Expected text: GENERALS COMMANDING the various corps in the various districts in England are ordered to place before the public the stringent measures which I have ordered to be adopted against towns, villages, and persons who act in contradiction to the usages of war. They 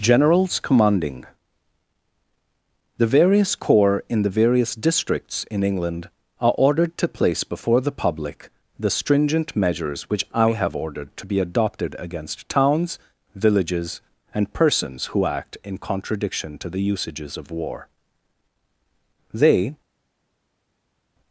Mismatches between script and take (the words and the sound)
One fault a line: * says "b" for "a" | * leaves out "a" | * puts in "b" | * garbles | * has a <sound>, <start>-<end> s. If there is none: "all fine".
all fine